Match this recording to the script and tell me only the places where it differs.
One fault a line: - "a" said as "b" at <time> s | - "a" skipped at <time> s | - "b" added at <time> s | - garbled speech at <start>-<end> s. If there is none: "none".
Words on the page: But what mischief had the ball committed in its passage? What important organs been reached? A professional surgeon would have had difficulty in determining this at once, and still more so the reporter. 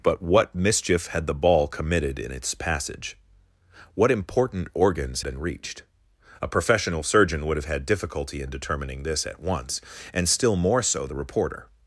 none